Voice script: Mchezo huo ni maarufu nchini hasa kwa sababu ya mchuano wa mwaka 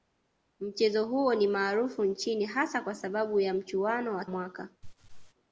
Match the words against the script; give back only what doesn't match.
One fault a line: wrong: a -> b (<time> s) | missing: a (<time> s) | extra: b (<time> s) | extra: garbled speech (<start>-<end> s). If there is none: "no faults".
no faults